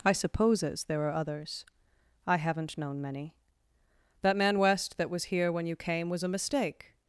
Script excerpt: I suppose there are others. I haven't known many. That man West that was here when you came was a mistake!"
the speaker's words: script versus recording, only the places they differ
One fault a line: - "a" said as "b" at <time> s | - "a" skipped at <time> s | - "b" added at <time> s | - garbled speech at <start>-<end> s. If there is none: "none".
- "suppose" said as "supposes" at 0.1 s